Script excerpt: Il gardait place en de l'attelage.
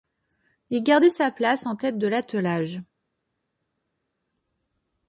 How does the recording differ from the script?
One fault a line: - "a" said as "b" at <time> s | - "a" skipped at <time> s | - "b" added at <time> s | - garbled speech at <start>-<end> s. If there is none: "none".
- "sa" added at 1.1 s
- "tête" added at 1.8 s